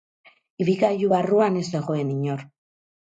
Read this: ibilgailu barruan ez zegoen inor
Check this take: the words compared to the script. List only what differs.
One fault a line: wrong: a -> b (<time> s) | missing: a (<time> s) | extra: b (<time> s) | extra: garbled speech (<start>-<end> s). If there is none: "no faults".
no faults